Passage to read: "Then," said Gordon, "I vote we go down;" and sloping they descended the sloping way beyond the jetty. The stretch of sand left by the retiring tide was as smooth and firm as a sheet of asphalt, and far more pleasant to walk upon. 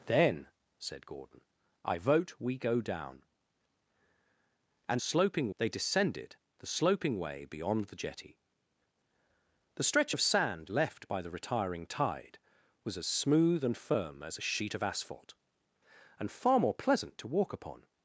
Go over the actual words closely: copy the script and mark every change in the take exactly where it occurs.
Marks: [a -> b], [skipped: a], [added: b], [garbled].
"Then," said Gordon, "I vote we go down;" and sloping they descended the sloping way beyond the jetty. The stretch of sand left by the retiring tide was as smooth and firm as a sheet of asphalt, and far more pleasant to walk upon.